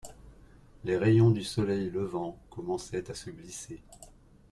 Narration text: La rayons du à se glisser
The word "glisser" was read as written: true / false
true